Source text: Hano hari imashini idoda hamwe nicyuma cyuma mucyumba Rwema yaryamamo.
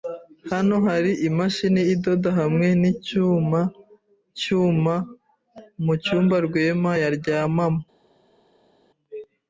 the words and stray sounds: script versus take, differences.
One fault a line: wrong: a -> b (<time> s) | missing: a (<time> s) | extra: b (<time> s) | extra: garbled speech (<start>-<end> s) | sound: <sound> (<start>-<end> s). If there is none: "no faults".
no faults